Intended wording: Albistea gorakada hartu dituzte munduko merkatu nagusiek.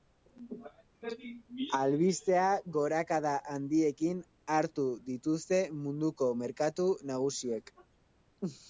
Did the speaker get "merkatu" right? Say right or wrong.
right